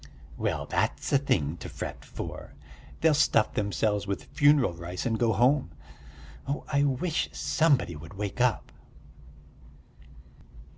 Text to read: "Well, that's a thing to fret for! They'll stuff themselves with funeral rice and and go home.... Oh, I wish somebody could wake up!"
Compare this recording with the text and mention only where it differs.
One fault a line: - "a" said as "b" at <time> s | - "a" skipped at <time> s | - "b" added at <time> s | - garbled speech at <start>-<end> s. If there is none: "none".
- "and" skipped at 5.2 s
- "could" said as "would" at 8.0 s